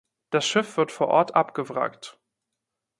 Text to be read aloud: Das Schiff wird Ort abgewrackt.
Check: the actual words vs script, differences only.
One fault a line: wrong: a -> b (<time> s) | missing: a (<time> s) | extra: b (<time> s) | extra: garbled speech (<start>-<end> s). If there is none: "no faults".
extra: vor (0.9 s)